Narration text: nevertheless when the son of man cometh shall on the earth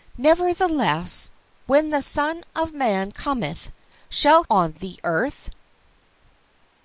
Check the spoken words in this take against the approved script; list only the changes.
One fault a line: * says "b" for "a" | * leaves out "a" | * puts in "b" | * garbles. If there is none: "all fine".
all fine